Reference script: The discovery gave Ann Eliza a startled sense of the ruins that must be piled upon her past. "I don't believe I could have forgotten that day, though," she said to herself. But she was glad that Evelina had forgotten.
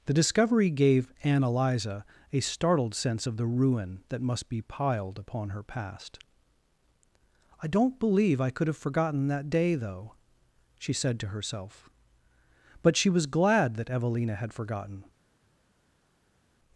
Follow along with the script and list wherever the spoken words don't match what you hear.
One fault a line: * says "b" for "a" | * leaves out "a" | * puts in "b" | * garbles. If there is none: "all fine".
* says "ruin" for "ruins"